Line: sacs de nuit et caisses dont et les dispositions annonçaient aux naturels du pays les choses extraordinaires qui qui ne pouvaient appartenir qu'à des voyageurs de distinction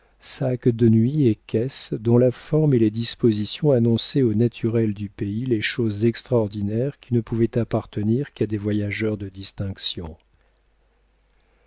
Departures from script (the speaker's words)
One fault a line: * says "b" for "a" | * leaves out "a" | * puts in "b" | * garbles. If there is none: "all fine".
* puts in "la forme"
* leaves out "qui"